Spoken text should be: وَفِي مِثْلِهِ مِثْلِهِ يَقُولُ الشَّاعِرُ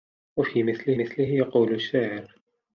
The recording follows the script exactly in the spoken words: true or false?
true